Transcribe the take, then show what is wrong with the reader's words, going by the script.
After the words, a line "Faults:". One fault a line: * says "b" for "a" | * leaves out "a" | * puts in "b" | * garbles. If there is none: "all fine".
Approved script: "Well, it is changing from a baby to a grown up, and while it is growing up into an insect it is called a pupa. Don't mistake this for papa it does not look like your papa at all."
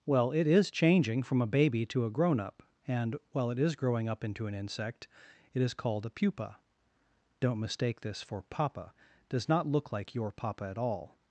"Well, it is changing from a baby to a grown up, and while it is growing up into an insect it is called a pupa. Don't mistake this for papa does not look like your papa at all."
Faults:
* leaves out "it"